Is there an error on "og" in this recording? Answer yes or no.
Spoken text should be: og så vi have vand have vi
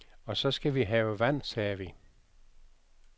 no